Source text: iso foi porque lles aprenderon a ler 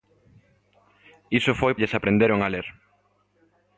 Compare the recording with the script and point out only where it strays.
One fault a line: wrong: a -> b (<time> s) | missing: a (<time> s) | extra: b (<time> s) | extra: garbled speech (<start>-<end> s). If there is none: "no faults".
missing: porque (1.7 s)